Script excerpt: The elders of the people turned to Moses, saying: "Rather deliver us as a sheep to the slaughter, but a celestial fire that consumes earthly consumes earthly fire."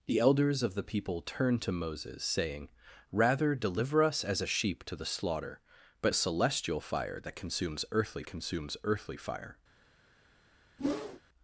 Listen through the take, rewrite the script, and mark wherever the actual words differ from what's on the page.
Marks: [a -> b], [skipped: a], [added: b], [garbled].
The elders of the people turned to Moses, saying: "Rather deliver us as a sheep to the slaughter, but a celestial fire that consumes earthly consumes earthly fire."